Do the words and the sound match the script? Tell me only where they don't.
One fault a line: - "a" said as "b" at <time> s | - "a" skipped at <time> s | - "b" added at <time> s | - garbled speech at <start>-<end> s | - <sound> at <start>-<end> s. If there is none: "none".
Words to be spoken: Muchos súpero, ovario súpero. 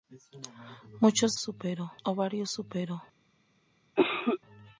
- cough at 4.0-4.4 s